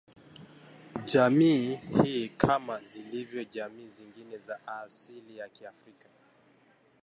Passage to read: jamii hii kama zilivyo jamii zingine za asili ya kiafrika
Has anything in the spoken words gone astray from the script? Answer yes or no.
no